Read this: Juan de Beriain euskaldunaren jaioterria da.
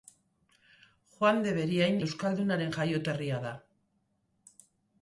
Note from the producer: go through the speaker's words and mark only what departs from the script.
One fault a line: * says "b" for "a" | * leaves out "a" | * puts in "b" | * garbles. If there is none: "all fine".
all fine